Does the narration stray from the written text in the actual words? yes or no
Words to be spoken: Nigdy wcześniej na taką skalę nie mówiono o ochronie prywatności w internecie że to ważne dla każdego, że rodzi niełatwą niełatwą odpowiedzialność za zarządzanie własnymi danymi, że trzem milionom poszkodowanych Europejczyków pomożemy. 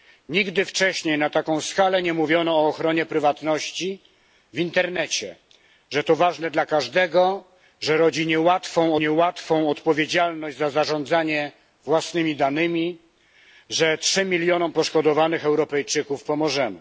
no